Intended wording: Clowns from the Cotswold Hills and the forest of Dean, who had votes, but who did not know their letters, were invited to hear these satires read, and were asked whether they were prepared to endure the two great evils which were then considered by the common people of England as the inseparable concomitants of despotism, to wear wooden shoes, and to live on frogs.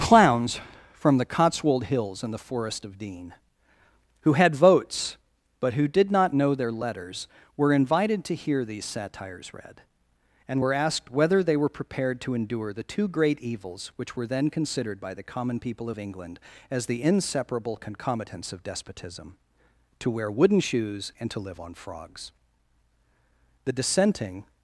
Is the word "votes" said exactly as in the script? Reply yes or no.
yes